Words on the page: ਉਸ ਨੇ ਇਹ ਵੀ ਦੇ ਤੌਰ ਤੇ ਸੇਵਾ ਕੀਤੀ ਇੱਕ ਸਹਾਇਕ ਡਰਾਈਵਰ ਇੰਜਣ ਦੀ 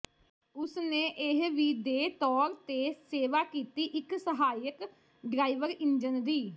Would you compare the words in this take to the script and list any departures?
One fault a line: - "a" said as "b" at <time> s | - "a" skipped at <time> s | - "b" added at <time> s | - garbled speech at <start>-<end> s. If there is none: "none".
none